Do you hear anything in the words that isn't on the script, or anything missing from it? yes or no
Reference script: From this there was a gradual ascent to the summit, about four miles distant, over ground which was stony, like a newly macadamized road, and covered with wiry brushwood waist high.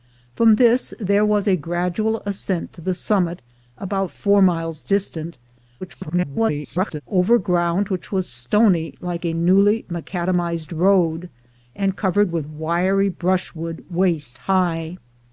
yes